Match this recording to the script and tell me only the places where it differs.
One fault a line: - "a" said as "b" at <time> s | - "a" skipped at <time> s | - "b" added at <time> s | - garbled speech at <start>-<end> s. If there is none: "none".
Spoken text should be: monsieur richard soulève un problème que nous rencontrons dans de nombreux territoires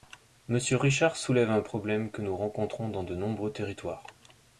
none